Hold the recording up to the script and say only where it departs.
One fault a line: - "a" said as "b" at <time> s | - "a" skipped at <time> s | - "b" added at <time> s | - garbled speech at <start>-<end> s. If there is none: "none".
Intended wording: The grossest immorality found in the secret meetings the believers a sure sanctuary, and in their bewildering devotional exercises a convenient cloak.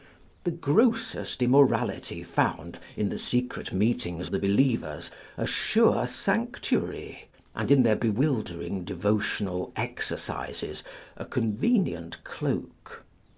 none